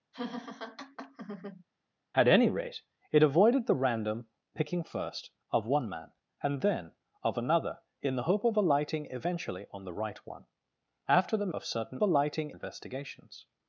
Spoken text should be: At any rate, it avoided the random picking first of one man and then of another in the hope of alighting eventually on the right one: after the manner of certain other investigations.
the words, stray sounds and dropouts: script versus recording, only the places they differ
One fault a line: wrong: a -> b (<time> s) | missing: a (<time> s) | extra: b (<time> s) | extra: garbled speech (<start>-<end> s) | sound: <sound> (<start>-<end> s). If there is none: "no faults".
sound: laugh (0.1-1.6 s)
missing: manner (11.5 s)
wrong: other -> alighting (12.0 s)